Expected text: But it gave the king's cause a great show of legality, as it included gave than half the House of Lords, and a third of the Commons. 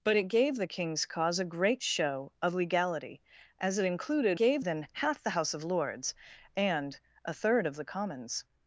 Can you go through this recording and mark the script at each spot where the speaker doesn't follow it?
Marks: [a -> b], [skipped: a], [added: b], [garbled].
But it gave the king's cause a great show of legality, as it included gave than half the House of Lords, and a third of the Commons.